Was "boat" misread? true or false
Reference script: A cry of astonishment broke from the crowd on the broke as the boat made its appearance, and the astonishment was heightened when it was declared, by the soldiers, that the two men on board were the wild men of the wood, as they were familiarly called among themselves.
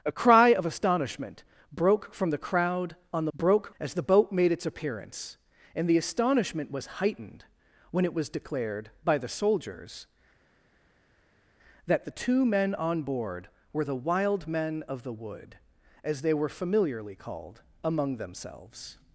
false